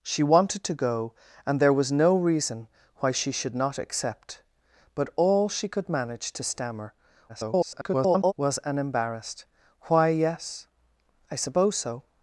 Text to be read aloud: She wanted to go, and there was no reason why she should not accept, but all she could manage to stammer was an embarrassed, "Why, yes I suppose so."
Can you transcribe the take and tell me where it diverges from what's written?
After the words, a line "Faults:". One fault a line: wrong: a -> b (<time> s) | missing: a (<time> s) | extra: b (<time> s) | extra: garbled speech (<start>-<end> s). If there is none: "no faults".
She wanted to go, and there was no reason why she should not accept, but all she could manage to stammer [garbled] was an embarrassed, "Why, yes I suppose so."
Faults:
extra: garbled speech (7.3-8.3 s)